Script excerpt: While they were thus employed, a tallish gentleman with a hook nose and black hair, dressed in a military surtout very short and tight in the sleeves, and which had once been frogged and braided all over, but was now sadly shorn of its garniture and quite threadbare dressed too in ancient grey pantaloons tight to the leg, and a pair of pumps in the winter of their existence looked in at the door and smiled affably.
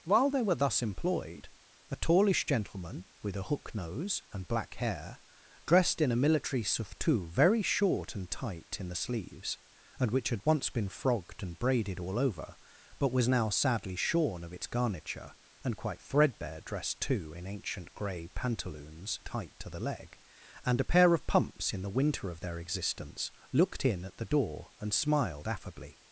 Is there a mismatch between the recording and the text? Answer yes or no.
no